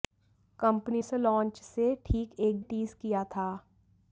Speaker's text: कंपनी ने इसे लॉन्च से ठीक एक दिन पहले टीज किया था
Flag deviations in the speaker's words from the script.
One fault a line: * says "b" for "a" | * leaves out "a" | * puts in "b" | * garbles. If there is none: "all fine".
* leaves out "ने"
* leaves out "दिन पहले"